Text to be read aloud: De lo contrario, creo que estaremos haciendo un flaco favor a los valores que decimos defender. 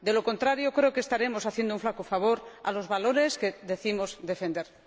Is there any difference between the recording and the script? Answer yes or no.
no